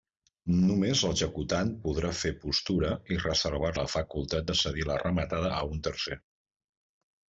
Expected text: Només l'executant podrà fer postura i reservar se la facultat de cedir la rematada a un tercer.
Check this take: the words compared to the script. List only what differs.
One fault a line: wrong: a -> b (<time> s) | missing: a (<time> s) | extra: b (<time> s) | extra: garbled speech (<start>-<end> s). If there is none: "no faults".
missing: se (3.7 s)